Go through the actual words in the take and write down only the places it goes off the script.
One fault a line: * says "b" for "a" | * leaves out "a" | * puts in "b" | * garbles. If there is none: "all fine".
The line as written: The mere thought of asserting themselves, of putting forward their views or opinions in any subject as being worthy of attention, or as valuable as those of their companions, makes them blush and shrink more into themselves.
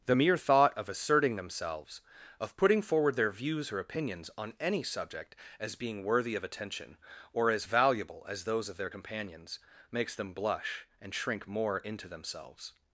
* says "on" for "in"